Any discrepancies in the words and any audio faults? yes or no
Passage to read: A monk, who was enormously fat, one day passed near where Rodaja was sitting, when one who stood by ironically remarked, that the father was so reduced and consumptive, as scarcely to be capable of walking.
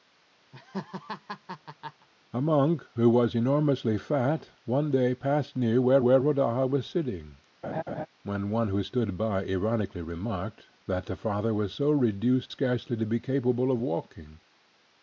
yes